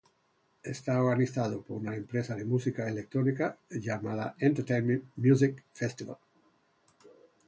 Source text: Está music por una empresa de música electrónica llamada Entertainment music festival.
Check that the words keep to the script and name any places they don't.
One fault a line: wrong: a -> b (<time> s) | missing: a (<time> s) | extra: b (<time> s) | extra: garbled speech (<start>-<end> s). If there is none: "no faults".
wrong: music -> organizado (1.0 s)